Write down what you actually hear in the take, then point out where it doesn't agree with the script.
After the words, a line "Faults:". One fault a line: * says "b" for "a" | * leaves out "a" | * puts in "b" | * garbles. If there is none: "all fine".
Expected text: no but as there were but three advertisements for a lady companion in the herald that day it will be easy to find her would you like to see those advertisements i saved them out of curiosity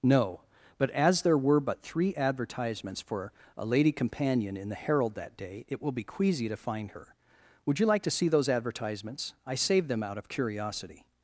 no but as there were but three advertisements for a lady companion in the herald that day it will be queasy to find her would you like to see those advertisements i saved them out of curiosity
Faults:
* says "queasy" for "easy"